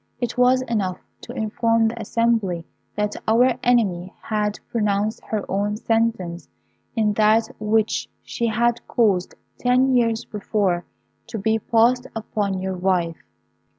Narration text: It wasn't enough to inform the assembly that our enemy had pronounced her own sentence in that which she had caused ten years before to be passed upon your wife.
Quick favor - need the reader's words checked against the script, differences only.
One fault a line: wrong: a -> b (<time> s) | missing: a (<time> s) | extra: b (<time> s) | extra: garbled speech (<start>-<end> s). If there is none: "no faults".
wrong: wasn't -> was (0.3 s)